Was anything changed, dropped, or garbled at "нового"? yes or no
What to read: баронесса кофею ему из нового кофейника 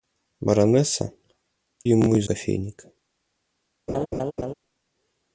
yes